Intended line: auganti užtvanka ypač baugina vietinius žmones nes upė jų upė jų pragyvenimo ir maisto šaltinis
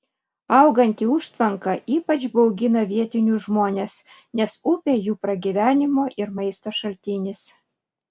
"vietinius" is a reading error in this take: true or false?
false